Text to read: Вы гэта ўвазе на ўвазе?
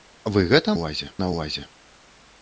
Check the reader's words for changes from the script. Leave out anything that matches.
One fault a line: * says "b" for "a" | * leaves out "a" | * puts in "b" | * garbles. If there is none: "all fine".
all fine